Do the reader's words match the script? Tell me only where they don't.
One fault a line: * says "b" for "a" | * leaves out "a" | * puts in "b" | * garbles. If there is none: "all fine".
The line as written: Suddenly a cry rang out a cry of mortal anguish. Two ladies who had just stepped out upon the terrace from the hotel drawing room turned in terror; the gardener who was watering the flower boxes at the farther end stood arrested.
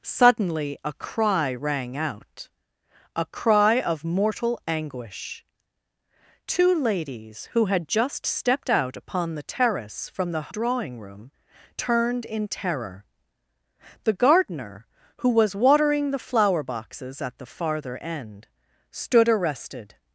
* leaves out "hotel"